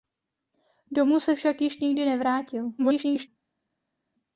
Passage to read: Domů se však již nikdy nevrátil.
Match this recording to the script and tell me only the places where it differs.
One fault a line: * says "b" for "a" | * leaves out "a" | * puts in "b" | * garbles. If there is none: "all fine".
* garbles